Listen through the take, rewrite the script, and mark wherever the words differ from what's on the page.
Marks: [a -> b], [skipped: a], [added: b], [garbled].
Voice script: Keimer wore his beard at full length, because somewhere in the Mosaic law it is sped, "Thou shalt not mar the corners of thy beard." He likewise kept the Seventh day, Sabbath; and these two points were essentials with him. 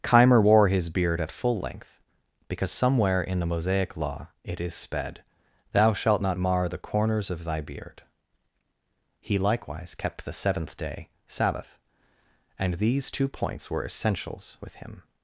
Keimer wore his beard at full length, because somewhere in the Mosaic law it is sped, "Thou shalt not mar the corners of thy beard." He likewise kept the Seventh day, Sabbath; and these two points were essentials with him.